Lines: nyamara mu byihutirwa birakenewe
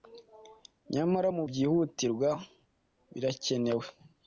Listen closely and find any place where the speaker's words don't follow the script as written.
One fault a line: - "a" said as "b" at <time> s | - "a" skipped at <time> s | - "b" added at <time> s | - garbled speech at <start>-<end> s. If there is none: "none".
none